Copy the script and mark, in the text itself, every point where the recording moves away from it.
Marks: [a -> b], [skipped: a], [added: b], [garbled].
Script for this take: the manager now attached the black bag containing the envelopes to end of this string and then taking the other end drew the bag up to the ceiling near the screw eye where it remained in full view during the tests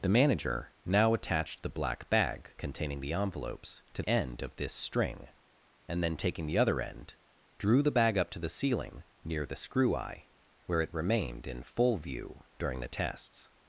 the manager now attached the black bag containing the envelopes to end of this string and then taking the other end drew the bag up to the ceiling near the screw eye where it remained in full view during the tests